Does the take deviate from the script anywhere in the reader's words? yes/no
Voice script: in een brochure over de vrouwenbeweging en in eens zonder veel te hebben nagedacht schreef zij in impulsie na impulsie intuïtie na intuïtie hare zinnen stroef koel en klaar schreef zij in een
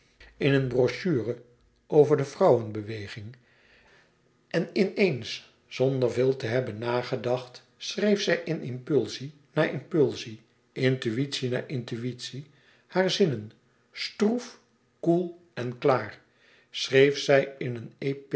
no